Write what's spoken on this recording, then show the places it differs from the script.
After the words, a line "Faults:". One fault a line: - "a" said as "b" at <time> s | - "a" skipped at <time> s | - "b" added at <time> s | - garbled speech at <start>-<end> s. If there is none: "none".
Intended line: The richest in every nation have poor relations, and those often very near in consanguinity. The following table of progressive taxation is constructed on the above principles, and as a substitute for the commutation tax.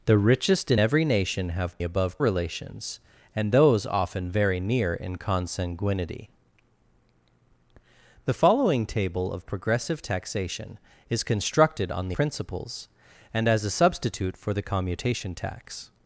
The richest in every nation have above relations, and those often very near in consanguinity. The following table of progressive taxation is constructed on the principles, and as a substitute for the commutation tax.
Faults:
- "poor" said as "above" at 1.8 s
- "above" skipped at 12.2 s